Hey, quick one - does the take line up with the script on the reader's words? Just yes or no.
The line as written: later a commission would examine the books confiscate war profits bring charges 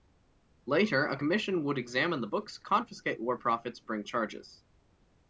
yes